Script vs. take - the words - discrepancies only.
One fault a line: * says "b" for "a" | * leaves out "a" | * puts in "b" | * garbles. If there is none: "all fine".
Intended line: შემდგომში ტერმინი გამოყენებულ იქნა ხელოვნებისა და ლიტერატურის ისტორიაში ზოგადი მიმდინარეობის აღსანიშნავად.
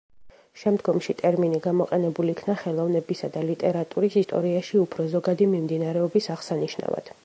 * puts in "უფრო"